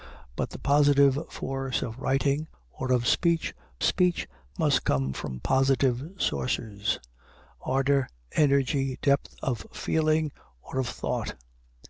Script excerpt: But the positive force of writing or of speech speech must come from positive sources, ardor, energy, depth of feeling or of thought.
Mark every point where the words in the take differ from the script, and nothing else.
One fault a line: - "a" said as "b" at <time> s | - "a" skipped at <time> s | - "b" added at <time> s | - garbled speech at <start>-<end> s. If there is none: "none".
none